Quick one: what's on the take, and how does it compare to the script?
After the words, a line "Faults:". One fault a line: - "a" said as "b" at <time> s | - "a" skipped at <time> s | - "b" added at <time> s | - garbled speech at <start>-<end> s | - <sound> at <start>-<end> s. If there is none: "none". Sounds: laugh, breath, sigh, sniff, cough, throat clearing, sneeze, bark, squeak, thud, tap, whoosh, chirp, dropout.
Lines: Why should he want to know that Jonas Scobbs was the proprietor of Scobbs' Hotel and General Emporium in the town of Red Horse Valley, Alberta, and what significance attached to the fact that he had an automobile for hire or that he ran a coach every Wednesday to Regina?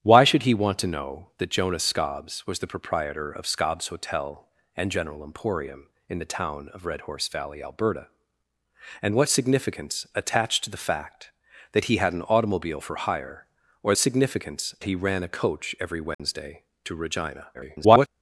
Why should he want to know that Jonas Scobbs was the proprietor of Scobbs' Hotel and General Emporium in the town of Red Horse Valley, Alberta, and what significance attached to the fact that he had an automobile for hire or significance he ran a coach every Wednesday to Regina? [garbled]
Faults:
- "that" said as "significance" at 14.0 s
- dropout at 16.1-16.2 s
- garbled speech at 17.5-18.1 s